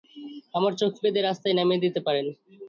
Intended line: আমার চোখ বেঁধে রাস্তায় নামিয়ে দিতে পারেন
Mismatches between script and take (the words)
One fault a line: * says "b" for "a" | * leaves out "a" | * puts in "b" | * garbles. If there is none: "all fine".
all fine